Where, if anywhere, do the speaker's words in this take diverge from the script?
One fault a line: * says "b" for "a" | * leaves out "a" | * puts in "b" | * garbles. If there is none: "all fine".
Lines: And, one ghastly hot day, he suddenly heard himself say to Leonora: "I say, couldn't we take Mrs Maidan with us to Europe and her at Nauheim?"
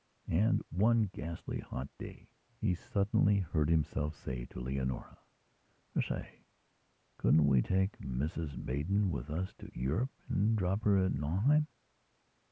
* puts in "drop"